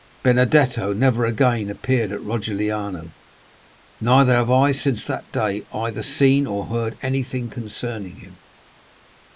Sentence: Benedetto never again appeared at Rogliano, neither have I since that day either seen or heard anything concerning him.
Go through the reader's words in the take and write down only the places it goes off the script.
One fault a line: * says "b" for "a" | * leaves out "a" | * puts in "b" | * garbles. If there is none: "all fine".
all fine